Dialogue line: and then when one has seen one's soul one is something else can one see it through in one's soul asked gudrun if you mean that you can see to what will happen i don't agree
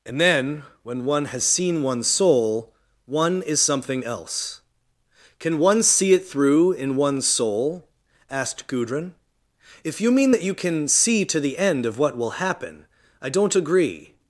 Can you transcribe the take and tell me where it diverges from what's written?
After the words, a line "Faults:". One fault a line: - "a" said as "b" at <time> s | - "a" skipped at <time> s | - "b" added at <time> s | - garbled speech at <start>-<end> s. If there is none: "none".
and then when one has seen one's soul one is something else can one see it through in one's soul asked gudrun if you mean that you can see to the end of what will happen i don't agree
Faults:
- "the end of" added at 11.4 s